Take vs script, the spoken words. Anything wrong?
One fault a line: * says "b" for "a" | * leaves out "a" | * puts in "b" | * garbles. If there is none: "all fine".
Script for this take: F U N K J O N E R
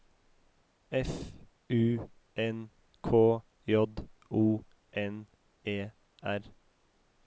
all fine